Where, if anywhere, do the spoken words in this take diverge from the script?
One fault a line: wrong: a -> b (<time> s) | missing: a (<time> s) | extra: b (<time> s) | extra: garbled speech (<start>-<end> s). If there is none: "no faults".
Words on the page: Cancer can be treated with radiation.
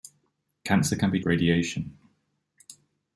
missing: treated with (1.2 s)